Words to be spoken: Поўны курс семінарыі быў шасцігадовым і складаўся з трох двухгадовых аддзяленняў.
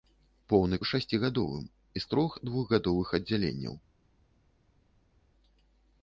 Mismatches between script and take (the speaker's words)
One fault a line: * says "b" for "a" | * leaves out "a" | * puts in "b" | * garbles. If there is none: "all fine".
* leaves out "курс семінарыі быў"
* leaves out "складаўся"